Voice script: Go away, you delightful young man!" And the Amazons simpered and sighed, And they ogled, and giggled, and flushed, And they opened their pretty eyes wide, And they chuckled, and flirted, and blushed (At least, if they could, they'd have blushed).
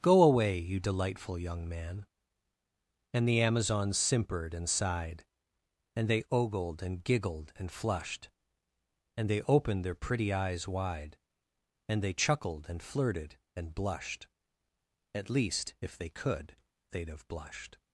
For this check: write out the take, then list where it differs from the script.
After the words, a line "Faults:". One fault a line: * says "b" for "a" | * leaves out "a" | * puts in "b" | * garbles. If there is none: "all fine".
Go away, you delightful young man!" And the Amazons simpered and sighed, And they ogled, and giggled, and flushed, And they opened their pretty eyes wide, And they chuckled, and flirted, and blushed (At least, if they could, they'd have blushed).
Faults:
all fine